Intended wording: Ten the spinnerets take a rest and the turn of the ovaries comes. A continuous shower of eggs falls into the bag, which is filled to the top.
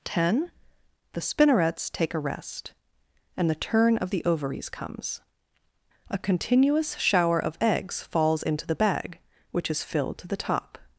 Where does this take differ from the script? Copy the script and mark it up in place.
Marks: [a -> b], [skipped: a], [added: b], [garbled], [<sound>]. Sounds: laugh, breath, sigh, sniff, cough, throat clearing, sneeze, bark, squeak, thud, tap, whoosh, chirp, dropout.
Ten the spinnerets take a rest and the turn of the ovaries comes. A continuous shower of eggs falls into the bag, which is filled to the top.